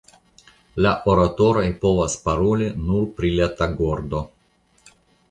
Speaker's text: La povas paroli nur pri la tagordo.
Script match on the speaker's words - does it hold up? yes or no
no